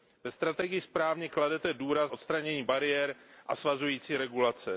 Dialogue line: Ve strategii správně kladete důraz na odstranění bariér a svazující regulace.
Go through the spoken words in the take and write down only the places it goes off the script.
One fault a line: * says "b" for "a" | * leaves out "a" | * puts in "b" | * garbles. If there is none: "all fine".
* leaves out "na"